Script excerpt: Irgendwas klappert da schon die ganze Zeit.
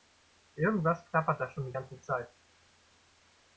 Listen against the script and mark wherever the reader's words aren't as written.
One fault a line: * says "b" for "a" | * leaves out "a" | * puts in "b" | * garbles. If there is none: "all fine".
all fine